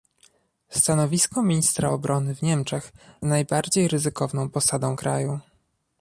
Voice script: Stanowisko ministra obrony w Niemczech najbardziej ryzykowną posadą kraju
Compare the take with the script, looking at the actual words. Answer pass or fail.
pass